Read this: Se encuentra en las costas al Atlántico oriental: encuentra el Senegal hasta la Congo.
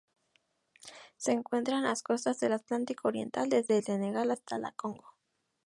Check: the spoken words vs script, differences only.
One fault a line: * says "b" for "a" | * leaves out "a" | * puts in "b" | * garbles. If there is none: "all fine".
* says "del" for "al"
* says "desde" for "encuentra"